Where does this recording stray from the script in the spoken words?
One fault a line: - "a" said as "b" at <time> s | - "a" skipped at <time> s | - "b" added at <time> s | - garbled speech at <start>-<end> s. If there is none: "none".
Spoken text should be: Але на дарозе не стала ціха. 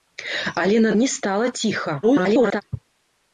- "дарозе" skipped at 0.9 s
- garbled speech at 2.0-2.6 s